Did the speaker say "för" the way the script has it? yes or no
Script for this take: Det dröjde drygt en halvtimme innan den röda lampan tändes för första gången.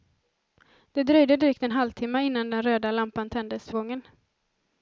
no